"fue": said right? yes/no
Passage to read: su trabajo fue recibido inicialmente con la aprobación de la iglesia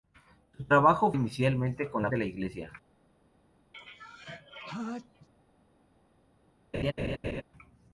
no